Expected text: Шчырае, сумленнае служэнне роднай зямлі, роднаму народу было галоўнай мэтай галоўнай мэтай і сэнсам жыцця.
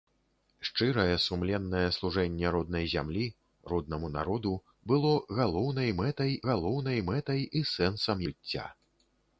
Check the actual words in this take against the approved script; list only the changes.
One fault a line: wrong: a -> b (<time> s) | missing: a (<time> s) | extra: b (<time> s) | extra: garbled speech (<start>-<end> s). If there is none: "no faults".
no faults